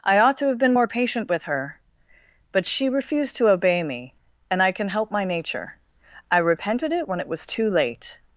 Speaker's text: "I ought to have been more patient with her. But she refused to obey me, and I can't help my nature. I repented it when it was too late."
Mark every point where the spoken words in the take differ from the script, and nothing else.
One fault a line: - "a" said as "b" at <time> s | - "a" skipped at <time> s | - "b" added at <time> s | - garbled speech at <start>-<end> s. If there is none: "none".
- "can't" said as "can" at 4.7 s